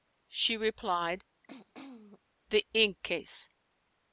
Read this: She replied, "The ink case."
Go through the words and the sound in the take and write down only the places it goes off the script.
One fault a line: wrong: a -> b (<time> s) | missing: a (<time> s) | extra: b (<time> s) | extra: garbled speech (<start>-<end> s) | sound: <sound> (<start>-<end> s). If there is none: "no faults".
sound: throat clearing (1.5-2.2 s)